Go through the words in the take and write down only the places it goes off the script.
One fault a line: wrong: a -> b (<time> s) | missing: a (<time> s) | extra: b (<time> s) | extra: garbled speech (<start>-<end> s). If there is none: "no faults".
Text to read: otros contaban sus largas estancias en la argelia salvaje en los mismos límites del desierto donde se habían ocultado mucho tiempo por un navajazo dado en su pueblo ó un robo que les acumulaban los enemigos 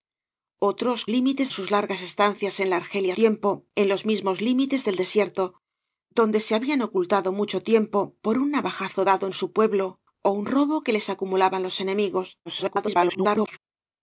wrong: contaban -> límites (1.1 s)
wrong: salvaje -> tiempo (3.1 s)
extra: garbled speech (12.5-13.6 s)